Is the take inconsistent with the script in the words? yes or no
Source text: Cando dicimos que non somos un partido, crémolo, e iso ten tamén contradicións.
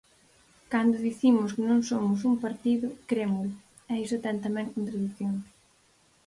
no